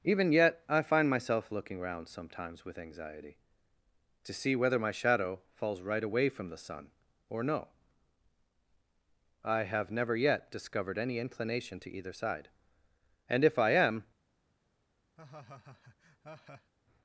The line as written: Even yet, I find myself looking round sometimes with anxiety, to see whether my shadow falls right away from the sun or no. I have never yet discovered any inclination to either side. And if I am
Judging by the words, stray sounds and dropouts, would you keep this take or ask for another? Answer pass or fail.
fail